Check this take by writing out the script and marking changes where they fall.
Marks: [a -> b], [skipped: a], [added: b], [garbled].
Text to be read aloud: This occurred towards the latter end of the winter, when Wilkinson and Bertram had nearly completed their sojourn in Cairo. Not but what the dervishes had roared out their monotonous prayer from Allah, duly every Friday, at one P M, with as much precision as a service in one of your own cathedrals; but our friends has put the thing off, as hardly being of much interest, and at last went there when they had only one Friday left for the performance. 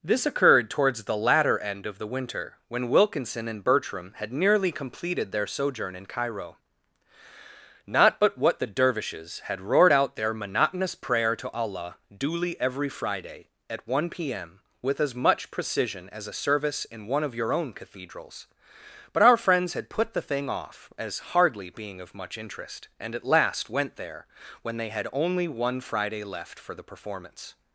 This occurred towards the latter end of the winter, when Wilkinson and Bertram had nearly completed their sojourn in Cairo. Not but what the dervishes had roared out their monotonous prayer [from -> to] Allah, duly every Friday, at one P M, with as much precision as a service in one of your own cathedrals; but our friends [has -> had] put the thing off, as hardly being of much interest, and at last went there when they had only one Friday left for the performance.